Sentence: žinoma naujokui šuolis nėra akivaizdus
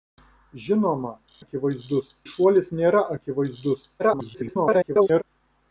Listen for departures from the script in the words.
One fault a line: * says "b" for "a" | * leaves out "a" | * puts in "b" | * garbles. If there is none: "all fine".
* says "akivaizdus" for "naujokui"
* garbles